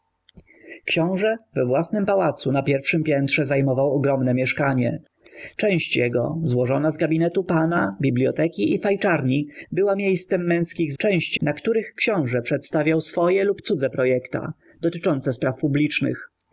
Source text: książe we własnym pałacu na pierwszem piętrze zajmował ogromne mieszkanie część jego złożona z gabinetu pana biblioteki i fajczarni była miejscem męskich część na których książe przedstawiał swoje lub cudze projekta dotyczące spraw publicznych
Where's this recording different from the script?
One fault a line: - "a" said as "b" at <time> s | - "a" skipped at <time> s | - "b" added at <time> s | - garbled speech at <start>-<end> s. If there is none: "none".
none